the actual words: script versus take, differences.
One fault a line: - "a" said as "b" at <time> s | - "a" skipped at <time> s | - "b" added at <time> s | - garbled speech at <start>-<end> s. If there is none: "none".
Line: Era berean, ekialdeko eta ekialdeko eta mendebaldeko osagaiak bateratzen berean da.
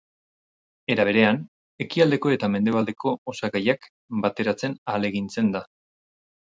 - "ekialdeko eta" skipped at 2.5 s
- "berean" said as "ahalegintzen" at 4.9 s